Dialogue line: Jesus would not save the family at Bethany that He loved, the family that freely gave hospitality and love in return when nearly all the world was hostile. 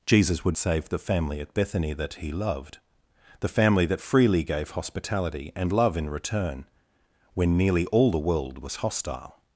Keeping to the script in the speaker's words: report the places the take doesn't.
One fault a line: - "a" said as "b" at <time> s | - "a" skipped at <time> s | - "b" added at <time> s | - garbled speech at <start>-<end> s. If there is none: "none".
- "not" skipped at 0.6 s